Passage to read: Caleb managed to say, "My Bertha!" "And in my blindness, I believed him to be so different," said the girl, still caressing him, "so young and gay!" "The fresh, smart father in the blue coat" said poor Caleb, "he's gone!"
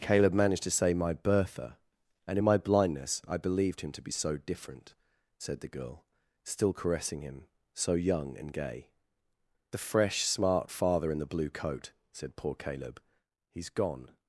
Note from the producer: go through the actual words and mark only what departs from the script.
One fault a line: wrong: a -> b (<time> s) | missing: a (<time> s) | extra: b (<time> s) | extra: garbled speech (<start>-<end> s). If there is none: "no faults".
no faults